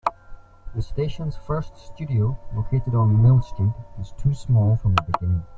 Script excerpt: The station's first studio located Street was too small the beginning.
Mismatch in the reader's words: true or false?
true